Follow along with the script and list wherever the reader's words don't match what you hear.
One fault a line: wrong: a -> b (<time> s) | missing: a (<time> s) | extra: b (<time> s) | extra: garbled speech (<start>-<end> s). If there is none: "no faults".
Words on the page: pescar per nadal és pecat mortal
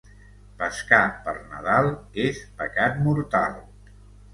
no faults